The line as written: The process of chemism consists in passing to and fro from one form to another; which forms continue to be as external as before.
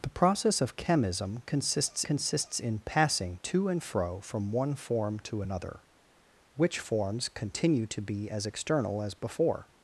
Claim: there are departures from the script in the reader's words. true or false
true